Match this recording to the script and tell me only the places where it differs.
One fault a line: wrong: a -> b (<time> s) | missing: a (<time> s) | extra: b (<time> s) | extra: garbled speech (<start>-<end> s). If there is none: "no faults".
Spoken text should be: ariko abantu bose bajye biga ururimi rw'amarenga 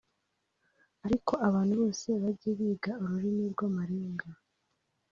no faults